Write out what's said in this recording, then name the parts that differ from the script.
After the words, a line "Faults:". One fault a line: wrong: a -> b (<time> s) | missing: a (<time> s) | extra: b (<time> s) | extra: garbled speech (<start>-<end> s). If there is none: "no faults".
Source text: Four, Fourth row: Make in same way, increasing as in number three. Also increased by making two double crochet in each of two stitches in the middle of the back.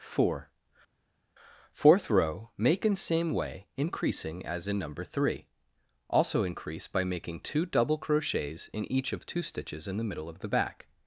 Four, Fourth row: Make in same way, increasing as in number three. Also increase by making two double crochets in each of two stitches in the middle of the back.
Faults:
wrong: increased -> increase (6.4 s)
wrong: crochet -> crochets (8.0 s)